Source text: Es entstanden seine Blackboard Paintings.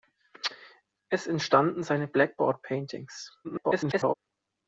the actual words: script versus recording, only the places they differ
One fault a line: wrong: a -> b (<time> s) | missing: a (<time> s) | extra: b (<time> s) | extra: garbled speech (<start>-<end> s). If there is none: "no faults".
extra: garbled speech (3.4-4.1 s)